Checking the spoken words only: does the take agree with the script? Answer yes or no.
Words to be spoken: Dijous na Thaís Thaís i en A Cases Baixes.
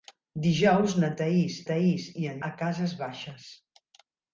yes